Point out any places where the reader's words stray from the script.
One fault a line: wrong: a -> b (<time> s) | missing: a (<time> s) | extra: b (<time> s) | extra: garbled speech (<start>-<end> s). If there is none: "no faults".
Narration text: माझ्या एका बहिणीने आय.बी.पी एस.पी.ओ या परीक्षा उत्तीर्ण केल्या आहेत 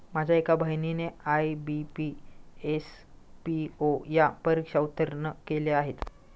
no faults